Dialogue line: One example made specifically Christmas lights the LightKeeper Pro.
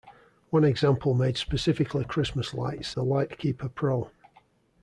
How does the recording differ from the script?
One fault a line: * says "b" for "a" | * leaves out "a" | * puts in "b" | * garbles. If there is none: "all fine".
all fine